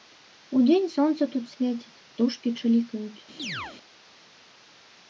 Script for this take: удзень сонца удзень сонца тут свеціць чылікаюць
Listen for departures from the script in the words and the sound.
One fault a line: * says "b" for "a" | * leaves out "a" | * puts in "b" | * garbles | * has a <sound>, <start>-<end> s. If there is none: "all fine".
* leaves out "удзень сонца"
* puts in "птушкі"
* has a chirp, 3.4-3.8 s